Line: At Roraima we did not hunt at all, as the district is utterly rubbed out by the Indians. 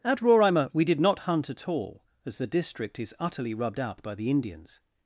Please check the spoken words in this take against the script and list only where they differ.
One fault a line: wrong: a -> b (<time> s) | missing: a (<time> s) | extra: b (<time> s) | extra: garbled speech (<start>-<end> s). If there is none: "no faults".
no faults